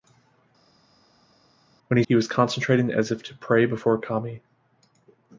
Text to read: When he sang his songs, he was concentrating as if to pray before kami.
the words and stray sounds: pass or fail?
fail